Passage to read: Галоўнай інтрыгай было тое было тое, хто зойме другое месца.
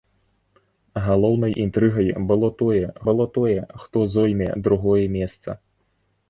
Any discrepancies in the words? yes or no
no